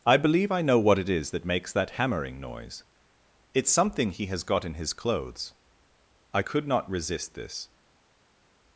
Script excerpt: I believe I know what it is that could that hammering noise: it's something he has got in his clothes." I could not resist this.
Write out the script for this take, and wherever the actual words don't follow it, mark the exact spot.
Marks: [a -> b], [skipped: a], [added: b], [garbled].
I believe I know what it is that [could -> makes] that hammering noise: it's something he has got in his clothes." I could not resist this.